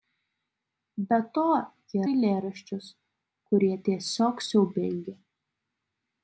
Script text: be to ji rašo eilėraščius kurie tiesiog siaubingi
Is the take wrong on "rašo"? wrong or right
wrong